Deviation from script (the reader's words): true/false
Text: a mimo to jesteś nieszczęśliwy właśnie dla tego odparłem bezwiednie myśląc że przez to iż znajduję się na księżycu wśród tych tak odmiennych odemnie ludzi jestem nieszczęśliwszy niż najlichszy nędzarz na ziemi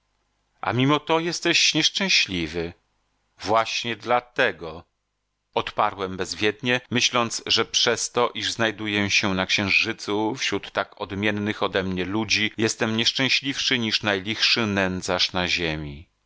true